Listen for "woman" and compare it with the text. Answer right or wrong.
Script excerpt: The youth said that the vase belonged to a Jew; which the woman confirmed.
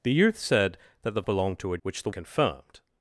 wrong